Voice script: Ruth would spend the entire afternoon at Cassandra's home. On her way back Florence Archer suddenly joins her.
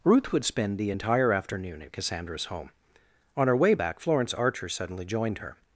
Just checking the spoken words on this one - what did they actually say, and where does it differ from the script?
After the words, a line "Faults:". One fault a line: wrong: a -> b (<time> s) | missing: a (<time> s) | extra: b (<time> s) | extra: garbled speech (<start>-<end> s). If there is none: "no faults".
Ruth would spend the entire afternoon at Cassandra's home. On her way back Florence Archer suddenly joined her.
Faults:
wrong: joins -> joined (5.0 s)